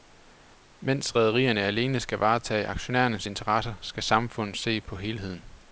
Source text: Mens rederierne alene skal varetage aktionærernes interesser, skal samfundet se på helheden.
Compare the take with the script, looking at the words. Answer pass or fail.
pass